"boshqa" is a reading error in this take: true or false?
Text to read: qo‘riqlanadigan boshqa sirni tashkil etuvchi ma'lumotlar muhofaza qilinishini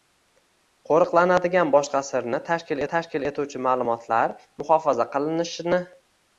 false